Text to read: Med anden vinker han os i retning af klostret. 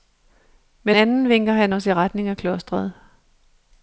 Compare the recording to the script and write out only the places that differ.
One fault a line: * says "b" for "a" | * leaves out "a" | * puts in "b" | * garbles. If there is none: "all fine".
all fine